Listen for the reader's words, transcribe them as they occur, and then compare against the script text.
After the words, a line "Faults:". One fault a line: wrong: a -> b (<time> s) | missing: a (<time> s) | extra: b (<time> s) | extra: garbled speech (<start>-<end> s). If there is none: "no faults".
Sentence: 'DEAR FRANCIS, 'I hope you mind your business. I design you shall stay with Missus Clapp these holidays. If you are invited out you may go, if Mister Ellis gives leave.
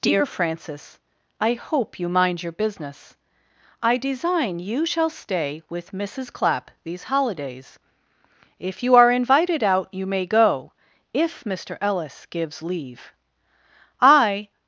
'DEAR FRANCIS, 'I hope you mind your business. I design you shall stay with Missus Clapp these holidays. If you are invited out you may go, if Mister Ellis gives leave. I
Faults:
extra: I (14.0 s)